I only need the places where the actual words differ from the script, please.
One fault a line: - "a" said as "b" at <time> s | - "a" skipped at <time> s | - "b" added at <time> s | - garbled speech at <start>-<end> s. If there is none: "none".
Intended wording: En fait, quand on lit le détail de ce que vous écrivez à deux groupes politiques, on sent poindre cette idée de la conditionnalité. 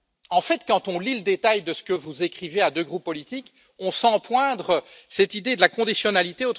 none